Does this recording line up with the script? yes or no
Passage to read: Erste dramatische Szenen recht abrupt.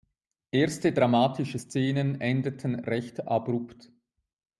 no